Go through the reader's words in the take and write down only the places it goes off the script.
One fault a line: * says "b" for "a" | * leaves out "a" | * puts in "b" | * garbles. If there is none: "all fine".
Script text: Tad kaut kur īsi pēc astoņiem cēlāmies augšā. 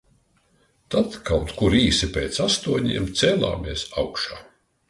all fine